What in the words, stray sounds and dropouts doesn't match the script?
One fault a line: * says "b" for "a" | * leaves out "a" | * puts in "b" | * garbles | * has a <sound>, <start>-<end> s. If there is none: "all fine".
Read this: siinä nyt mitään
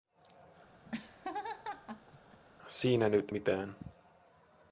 * has a laugh, 0.9-2.4 s